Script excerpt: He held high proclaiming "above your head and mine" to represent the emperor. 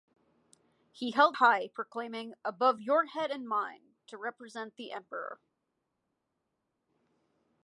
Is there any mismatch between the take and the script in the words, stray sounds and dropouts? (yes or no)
no